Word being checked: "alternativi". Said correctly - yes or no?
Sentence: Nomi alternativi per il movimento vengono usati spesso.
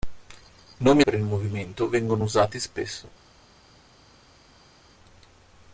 no